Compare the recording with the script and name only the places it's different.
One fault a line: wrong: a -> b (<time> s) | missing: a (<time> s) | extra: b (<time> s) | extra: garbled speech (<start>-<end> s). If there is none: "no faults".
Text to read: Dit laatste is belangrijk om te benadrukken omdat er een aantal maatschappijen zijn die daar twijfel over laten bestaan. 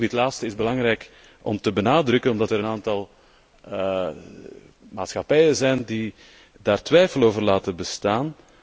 no faults